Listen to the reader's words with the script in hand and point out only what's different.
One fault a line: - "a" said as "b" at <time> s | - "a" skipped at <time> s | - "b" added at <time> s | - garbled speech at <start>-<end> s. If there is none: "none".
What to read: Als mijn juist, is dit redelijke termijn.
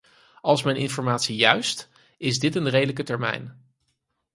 - "informatie" added at 0.8 s
- "een" added at 2.5 s